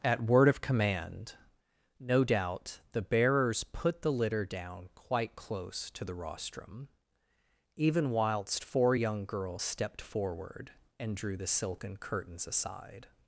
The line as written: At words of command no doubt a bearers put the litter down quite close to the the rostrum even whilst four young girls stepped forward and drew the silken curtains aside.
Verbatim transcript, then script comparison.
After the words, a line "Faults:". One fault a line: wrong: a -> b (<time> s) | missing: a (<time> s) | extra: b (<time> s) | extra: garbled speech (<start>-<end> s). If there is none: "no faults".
At word of command no doubt the bearers put the litter down quite close to the rostrum even whilst four young girls stepped forward and drew the silken curtains aside.
Faults:
wrong: words -> word (0.2 s)
wrong: a -> the (2.9 s)
missing: the (6.2 s)